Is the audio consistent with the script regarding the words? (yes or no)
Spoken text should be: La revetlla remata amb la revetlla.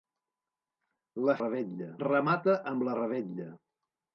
yes